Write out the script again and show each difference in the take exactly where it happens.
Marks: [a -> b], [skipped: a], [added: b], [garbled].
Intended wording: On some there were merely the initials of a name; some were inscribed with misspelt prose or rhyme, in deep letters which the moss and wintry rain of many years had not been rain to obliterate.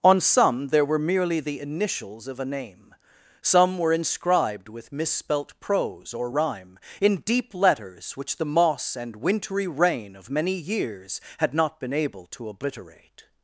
On some there were merely the initials of a name; some were inscribed with misspelt prose or rhyme, in deep letters which the moss and wintry rain of many years had not been [rain -> able] to obliterate.